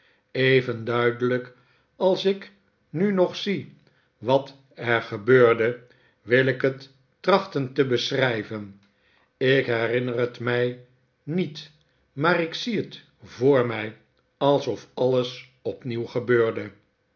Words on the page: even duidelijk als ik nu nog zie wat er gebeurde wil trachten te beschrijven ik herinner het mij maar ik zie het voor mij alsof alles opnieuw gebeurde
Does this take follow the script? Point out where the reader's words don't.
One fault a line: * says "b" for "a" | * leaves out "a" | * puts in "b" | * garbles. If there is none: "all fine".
* puts in "ik het"
* puts in "niet"